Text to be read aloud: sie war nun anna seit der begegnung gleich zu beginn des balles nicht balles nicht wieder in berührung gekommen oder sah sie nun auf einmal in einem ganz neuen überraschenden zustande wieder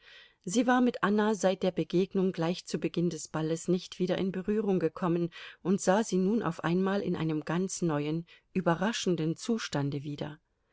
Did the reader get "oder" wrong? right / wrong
wrong